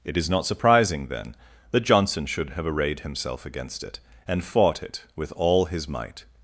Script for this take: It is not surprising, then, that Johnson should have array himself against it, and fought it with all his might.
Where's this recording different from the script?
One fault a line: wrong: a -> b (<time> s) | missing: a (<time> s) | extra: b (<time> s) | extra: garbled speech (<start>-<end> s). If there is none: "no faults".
wrong: array -> arrayed (2.7 s)